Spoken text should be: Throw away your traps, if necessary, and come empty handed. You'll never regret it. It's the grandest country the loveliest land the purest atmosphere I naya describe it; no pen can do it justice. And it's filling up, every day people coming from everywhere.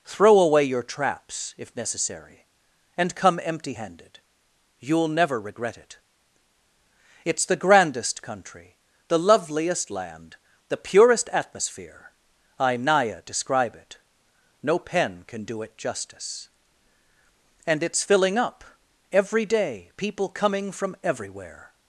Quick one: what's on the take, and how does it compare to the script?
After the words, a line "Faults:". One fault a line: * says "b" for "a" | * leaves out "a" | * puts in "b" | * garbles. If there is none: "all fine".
Throw away your traps, if necessary, and come empty handed. You'll never regret it. It's the grandest country the loveliest land the purest atmosphere I naya describe it; no pen can do it justice. And it's filling up, every day people coming from everywhere.
Faults:
all fine